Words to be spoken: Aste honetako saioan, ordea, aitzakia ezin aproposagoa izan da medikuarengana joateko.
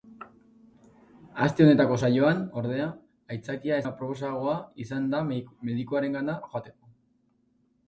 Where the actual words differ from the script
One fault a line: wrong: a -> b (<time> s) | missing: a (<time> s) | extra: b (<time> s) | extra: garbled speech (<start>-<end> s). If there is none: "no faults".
missing: ezin (3.8 s)